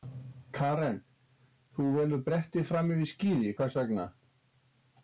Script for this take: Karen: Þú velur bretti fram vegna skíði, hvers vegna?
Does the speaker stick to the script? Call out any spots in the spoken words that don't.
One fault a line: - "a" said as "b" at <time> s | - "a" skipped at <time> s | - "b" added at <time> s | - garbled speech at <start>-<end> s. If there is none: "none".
- "vegna" said as "yfir" at 3.0 s